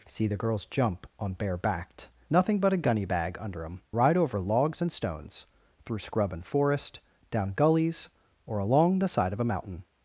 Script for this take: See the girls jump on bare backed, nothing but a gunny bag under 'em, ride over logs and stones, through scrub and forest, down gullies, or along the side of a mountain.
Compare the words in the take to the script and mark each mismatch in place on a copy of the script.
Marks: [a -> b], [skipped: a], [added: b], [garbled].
See the girls jump on bare backed, nothing but a gunny bag under 'em, ride over logs and stones, through scrub and forest, down gullies, or along the side of a mountain.